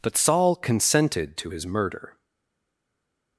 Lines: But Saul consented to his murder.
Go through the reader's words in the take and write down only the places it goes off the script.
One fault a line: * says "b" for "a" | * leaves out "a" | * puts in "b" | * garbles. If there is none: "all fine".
all fine